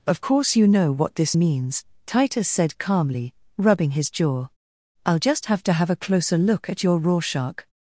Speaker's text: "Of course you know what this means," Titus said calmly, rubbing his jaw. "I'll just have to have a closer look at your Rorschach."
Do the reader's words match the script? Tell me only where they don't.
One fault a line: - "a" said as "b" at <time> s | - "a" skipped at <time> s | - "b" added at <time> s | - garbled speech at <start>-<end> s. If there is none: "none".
none